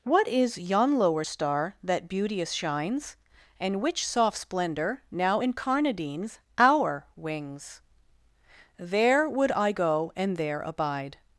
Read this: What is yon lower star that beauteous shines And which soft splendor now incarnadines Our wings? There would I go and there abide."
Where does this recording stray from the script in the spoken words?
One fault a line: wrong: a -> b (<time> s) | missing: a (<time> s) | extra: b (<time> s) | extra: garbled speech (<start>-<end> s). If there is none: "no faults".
no faults